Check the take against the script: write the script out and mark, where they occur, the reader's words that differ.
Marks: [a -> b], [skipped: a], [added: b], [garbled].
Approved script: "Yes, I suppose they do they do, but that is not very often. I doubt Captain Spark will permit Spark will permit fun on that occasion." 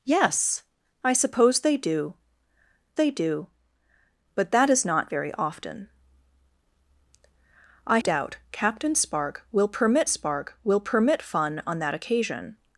"Yes, I suppose they do they do, but that is not very often. I doubt Captain Spark will permit Spark will permit fun on that occasion."